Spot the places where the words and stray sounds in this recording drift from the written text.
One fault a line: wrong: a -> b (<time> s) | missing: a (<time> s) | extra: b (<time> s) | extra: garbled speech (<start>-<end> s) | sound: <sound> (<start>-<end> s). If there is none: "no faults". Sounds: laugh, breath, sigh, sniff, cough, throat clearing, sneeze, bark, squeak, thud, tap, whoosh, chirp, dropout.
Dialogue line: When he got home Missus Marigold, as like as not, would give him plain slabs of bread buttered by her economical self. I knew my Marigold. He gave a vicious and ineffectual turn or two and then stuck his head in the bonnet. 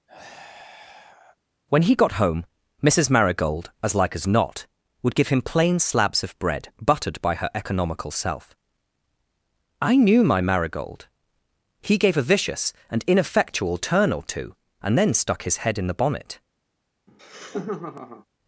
sound: sigh (0.1-1.4 s)
sound: laugh (17.1-18.3 s)